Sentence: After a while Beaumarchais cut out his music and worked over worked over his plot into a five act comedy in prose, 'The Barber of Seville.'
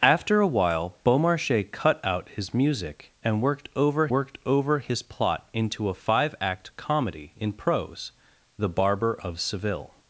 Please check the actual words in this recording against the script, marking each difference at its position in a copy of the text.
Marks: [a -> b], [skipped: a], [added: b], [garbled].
After a while Beaumarchais cut out his music and worked over worked over his plot into a five act comedy in prose, 'The Barber of Seville.'